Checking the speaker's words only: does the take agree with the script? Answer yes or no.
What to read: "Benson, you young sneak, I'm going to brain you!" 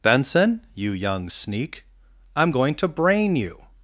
yes